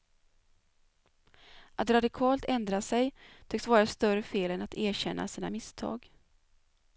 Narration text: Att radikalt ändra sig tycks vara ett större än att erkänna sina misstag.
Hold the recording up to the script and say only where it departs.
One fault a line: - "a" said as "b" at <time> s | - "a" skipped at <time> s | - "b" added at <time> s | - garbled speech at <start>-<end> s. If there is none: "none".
- "fel" added at 4.2 s